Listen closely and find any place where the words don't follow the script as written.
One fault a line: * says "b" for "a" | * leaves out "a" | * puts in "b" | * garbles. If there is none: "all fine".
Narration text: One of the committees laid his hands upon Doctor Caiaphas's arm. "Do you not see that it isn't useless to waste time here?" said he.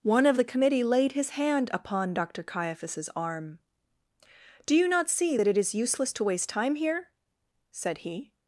* says "committee" for "committees"
* says "hand" for "hands"
* says "is" for "isn't"